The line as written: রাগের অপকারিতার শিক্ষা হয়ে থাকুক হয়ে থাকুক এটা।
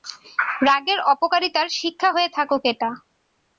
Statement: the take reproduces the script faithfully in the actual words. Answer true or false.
false